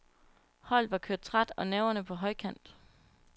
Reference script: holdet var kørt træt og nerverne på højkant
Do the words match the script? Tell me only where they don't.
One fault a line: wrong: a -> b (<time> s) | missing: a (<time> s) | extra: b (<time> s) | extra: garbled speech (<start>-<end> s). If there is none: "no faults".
no faults